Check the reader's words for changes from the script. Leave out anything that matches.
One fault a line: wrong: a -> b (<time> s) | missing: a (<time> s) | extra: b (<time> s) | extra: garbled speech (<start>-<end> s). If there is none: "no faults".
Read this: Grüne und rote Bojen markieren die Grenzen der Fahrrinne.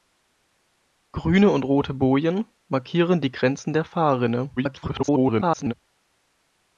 extra: garbled speech (4.6-5.7 s)